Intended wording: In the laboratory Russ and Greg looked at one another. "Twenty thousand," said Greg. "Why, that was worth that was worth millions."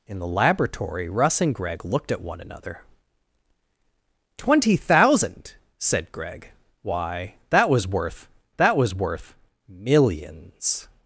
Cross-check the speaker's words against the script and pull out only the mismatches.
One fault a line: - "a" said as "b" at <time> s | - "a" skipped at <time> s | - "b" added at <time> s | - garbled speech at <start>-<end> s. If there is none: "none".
none